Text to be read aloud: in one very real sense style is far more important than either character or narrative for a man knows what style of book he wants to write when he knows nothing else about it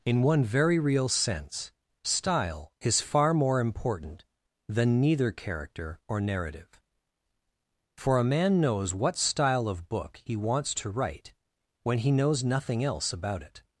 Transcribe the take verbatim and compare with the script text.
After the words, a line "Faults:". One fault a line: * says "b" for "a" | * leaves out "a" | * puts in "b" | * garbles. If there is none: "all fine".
in one very real sense style is far more important than neither character or narrative for a man knows what style of book he wants to write when he knows nothing else about it
Faults:
* says "neither" for "either"